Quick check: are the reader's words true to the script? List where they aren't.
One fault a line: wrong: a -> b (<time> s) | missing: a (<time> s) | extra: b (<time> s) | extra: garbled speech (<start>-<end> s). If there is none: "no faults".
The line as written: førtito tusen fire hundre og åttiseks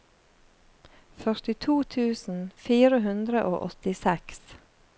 no faults